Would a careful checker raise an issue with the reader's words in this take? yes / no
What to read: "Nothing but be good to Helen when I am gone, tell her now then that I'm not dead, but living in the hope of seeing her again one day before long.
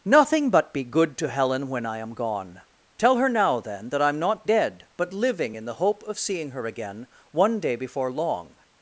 no